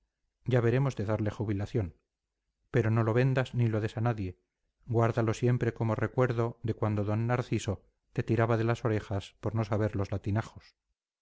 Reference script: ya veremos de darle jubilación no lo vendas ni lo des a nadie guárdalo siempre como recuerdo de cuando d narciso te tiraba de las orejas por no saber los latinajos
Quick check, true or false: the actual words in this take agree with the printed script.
false